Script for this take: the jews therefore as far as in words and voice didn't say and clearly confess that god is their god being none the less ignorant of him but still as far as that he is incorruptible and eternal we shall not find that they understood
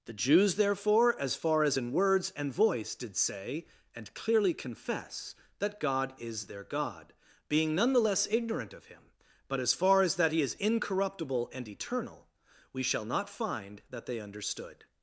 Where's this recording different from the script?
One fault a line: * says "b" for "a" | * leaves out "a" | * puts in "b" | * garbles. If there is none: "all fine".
* says "did" for "didn't"
* leaves out "still"